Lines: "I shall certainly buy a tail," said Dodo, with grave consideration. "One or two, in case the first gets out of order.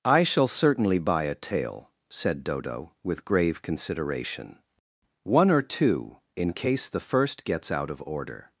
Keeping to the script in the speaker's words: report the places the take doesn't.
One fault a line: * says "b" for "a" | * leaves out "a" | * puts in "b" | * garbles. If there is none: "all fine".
all fine